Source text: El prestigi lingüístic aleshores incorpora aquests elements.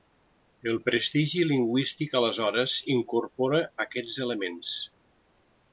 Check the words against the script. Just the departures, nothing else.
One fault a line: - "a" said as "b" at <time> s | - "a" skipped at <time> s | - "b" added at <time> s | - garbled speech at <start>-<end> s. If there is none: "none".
none